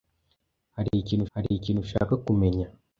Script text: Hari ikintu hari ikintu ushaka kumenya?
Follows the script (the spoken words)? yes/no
yes